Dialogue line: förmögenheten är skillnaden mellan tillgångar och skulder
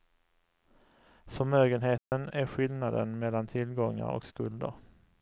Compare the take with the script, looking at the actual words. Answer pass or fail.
pass